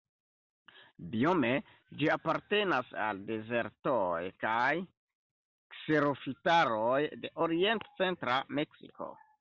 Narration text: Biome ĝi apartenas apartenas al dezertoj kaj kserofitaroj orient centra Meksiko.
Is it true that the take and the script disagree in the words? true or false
true